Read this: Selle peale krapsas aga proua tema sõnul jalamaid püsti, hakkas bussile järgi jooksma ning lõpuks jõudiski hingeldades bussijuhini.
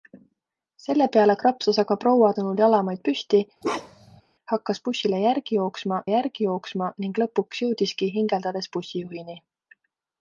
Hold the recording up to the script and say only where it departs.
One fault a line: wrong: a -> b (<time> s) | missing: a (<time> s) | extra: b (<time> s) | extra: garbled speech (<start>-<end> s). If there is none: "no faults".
missing: tema (2.3 s)
extra: järgi jooksma (6.1 s)